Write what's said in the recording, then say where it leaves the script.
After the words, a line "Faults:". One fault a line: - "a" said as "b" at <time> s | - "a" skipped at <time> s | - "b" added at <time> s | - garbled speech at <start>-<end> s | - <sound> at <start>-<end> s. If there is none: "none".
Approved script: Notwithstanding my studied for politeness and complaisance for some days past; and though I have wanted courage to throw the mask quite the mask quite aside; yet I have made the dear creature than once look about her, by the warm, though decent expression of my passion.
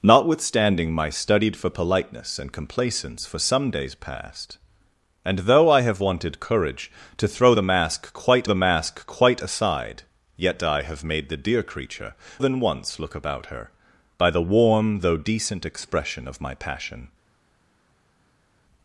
Notwithstanding my studied for politeness and complaisance for some days past; and though I have wanted courage to throw the mask quite the mask quite aside; yet I have made the dear creature than once look about her, by the warm, though decent expression of my passion.
Faults:
none